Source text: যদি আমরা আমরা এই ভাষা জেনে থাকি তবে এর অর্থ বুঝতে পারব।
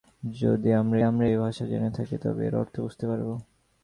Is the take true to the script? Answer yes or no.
yes